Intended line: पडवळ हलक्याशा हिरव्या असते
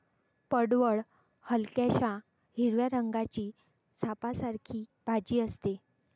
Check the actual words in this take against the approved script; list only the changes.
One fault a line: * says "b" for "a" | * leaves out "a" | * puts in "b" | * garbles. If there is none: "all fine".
* puts in "रंगाची सापासारखी भाजी"